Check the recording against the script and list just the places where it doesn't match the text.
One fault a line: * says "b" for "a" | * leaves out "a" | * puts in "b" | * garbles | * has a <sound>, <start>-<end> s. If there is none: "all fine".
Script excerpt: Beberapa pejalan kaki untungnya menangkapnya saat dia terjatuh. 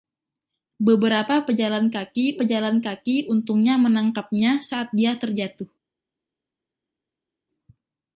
* puts in "pejalan kaki"